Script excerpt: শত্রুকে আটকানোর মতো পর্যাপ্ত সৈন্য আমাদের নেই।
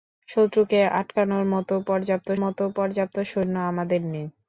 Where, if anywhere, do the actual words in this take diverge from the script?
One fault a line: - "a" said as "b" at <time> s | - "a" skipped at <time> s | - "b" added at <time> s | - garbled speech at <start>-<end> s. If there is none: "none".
- "মতো পর্যাপ্ত" added at 2.4 s